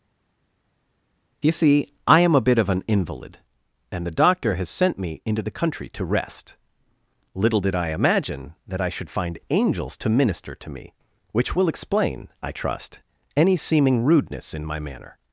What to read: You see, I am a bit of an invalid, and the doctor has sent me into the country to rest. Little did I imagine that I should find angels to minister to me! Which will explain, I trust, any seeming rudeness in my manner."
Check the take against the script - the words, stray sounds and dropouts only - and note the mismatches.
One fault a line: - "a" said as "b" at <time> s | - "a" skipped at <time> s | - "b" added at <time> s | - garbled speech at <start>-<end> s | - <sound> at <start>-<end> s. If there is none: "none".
none